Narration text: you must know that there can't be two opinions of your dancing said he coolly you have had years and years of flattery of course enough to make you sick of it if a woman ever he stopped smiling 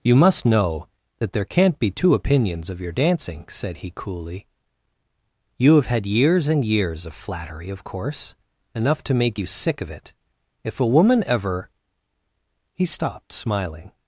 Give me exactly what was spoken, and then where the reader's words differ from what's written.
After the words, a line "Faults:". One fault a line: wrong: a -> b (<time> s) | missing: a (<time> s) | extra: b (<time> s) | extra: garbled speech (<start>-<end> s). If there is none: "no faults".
you must know that there can't be two opinions of your dancing said he coolly you have had years and years of flattery of course enough to make you sick of it if a woman ever he stopped smiling
Faults:
no faults